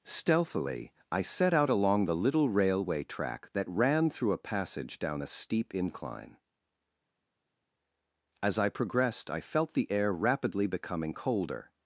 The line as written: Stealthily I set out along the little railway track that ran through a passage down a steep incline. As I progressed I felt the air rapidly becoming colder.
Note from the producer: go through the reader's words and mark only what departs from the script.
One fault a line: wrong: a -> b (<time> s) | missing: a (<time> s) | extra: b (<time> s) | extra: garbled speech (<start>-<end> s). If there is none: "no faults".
no faults